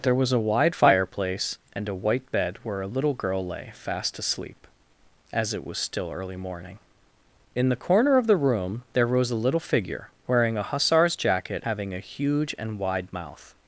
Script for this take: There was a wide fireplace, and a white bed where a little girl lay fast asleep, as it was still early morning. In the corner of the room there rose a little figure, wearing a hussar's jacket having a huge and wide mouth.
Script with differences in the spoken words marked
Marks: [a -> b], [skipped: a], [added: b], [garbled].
There was a wide fireplace, and a white bed where a little girl lay fast asleep, as it was still early morning. In the corner of the room there rose a little figure, wearing a hussar's jacket having a huge and wide mouth.